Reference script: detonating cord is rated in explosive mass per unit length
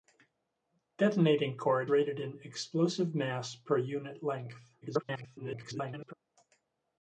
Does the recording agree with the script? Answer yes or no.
no